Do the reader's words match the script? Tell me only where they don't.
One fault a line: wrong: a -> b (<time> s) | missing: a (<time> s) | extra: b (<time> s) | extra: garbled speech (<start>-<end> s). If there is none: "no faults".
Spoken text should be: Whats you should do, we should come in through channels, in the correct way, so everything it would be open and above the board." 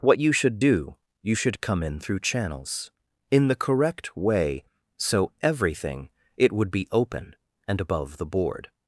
wrong: Whats -> What (0.0 s)
wrong: we -> you (1.2 s)